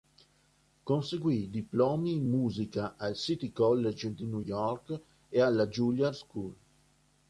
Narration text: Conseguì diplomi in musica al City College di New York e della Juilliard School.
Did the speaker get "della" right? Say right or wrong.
wrong